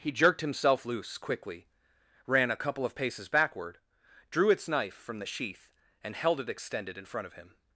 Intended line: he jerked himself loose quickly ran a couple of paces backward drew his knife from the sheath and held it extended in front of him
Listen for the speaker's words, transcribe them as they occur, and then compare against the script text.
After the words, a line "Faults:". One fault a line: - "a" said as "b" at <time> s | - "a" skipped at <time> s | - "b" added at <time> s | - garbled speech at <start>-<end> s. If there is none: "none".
he jerked himself loose quickly ran a couple of paces backward drew its knife from the sheath and held it extended in front of him
Faults:
- "his" said as "its" at 4.5 s